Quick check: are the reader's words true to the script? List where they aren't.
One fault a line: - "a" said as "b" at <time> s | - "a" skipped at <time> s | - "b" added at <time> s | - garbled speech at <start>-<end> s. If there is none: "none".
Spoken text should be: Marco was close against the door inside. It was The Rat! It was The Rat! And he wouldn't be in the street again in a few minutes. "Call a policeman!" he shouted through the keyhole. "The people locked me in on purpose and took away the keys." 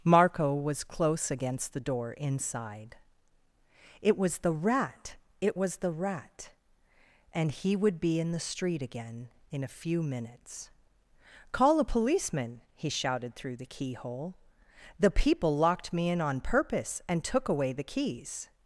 - "wouldn't" said as "would" at 7.7 s